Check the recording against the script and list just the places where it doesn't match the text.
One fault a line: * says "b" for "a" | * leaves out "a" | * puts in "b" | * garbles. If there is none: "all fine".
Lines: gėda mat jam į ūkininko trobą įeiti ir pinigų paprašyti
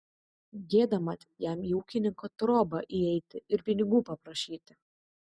all fine